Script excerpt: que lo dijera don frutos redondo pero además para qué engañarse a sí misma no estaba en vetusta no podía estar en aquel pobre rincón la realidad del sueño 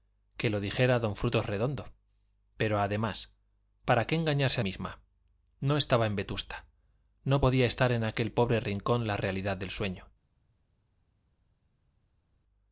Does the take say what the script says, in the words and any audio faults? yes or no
no